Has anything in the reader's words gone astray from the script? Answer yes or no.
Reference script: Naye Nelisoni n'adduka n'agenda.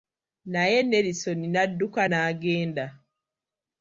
no